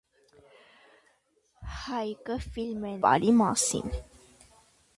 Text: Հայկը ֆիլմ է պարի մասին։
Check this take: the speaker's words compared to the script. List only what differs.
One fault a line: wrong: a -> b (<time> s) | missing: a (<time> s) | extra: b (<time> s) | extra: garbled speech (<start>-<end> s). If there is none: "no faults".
no faults